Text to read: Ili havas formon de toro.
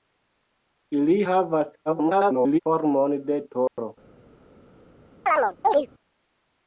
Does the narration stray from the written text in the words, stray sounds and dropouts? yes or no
yes